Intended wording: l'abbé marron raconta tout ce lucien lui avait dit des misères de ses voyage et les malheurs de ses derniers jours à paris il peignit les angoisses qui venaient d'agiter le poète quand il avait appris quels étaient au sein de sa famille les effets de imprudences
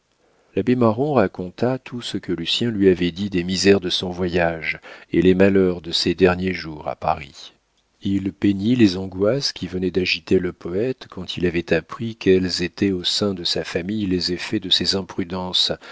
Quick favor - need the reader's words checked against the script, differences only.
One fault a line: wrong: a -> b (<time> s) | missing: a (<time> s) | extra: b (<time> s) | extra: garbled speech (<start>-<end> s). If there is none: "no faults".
extra: que (2.2 s)
wrong: ses -> son (3.9 s)
extra: ses (14.7 s)